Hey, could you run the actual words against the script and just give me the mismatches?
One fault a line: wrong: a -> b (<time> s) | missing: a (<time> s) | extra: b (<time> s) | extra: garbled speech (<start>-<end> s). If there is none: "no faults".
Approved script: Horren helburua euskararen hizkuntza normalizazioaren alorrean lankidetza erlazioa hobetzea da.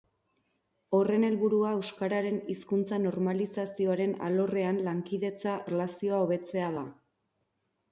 no faults